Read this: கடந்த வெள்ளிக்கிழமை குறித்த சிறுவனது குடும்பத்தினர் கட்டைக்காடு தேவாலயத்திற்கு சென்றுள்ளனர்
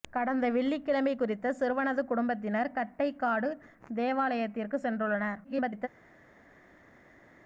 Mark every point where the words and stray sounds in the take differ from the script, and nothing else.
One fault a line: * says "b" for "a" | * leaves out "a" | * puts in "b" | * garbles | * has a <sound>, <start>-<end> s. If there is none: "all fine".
* garbles